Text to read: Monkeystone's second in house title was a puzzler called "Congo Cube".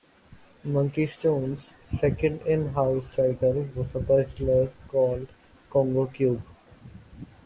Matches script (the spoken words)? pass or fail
pass